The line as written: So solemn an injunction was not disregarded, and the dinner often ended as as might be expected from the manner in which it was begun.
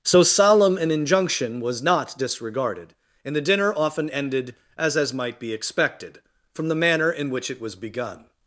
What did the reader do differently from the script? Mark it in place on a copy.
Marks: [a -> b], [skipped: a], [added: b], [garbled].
So solemn an injunction was not disregarded, and the dinner often ended as as might be expected from the manner in which it was begun.